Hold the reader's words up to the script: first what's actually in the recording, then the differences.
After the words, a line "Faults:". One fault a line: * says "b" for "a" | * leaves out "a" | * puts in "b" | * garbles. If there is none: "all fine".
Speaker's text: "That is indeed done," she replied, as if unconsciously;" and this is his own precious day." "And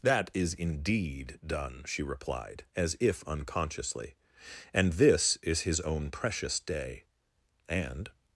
"That is indeed done," she replied, as if unconsciously;" and this is his own precious day." "And
Faults:
all fine